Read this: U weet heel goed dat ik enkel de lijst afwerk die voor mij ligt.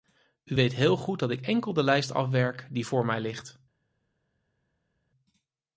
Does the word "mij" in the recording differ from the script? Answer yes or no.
no